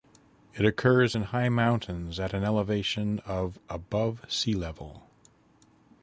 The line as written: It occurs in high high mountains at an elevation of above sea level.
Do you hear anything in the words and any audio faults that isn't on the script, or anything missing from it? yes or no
yes